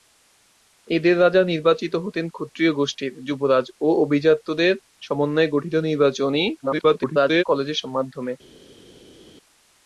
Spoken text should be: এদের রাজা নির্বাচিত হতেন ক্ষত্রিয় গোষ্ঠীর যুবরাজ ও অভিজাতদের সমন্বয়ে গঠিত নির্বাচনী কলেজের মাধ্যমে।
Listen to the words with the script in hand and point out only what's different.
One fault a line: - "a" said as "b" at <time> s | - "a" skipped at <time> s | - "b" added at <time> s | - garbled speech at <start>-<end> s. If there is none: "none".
- garbled speech at 6.6-7.4 s